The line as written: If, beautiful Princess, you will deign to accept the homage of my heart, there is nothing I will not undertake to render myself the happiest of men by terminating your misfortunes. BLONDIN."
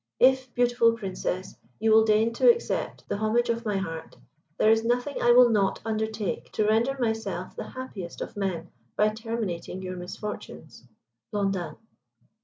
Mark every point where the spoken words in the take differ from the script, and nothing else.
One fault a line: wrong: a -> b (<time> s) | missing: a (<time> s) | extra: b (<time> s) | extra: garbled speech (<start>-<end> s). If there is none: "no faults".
no faults